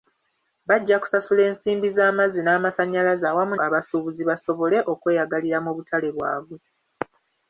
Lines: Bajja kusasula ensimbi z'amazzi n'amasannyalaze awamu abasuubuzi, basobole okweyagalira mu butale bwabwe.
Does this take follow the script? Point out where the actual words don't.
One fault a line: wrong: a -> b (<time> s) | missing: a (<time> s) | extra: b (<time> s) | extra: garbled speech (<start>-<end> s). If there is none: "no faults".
no faults